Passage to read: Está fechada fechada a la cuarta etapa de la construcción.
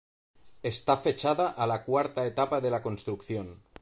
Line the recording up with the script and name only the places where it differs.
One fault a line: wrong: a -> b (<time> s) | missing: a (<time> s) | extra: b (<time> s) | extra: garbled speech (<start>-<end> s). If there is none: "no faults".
missing: fechada (1.5 s)